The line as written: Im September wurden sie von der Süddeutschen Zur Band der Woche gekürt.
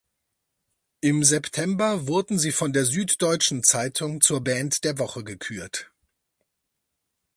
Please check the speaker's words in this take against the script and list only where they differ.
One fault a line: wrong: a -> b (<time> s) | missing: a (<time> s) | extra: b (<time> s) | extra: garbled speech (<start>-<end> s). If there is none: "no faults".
extra: Zeitung (3.6 s)